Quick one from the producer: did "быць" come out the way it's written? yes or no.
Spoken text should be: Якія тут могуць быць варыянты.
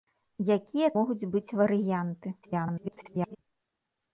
yes